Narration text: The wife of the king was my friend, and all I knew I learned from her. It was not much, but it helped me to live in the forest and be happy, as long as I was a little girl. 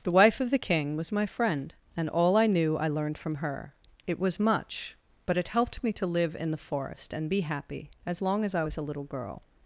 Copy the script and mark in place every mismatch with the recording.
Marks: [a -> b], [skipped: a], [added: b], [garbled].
The wife of the king was my friend, and all I knew I learned from her. It was [skipped: not] much, but it helped me to live in the forest and be happy, as long as I was a little girl.